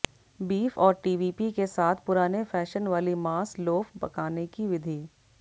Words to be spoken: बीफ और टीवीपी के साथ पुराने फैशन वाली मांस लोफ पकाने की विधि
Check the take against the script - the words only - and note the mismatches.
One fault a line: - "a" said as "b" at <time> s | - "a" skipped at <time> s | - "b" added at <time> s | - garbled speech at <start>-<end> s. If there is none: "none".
none